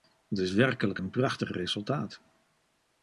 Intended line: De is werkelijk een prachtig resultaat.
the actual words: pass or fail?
fail